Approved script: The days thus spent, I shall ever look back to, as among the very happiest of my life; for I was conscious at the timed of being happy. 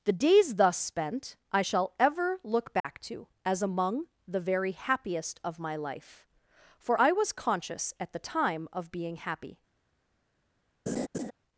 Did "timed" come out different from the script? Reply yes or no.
yes